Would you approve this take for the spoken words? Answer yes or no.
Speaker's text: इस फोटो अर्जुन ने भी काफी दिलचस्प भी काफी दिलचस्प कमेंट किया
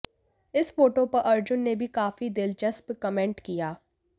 no